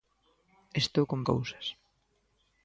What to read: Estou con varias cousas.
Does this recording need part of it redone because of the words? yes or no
yes